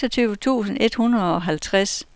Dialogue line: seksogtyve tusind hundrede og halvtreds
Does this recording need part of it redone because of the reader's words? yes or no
yes